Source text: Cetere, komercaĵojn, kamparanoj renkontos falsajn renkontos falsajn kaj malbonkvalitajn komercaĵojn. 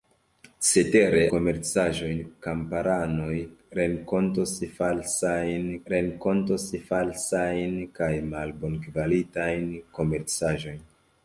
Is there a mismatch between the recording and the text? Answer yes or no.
no